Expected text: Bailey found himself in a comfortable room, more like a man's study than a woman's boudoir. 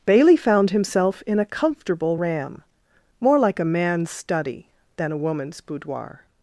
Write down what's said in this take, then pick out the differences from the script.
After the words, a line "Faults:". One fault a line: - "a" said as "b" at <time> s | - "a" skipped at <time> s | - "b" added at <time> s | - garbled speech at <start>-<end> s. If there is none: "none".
Bailey found himself in a comfortable ram, more like a man's study than a woman's boudoir.
Faults:
- "room" said as "ram" at 2.1 s